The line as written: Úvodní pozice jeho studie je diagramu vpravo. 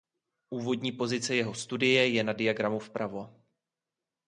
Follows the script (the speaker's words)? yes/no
no